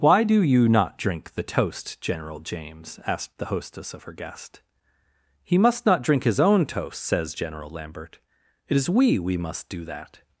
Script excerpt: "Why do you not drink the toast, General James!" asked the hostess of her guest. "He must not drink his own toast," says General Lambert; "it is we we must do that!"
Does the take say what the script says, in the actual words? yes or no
yes